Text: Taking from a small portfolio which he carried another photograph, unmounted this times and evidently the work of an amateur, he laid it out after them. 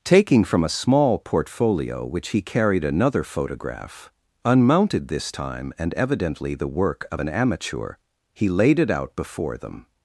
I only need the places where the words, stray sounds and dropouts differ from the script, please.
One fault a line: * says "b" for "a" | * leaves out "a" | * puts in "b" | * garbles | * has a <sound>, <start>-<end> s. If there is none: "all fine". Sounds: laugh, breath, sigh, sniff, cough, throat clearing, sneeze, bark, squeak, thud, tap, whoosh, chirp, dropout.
* says "time" for "times"
* says "before" for "after"